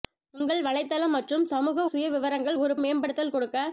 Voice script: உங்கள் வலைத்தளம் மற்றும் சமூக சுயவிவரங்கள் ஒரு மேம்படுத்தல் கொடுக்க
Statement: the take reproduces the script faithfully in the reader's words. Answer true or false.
true